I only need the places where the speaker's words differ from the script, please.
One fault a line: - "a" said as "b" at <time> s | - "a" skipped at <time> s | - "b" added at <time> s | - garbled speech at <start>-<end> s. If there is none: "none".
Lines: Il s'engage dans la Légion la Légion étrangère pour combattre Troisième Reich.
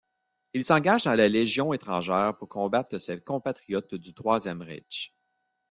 - "la Légion" skipped at 1.7 s
- "ses compatriotes du" added at 3.0 s